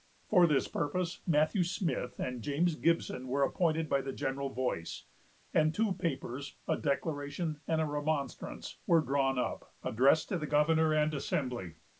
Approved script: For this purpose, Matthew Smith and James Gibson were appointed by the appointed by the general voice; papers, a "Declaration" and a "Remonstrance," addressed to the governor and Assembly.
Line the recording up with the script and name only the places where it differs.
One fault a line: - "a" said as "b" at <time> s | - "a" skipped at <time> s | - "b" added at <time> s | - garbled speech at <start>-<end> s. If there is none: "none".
- "appointed by the general voice" said as "general voice and two" at 4.1 s
- "were drawn up" added at 8.9 s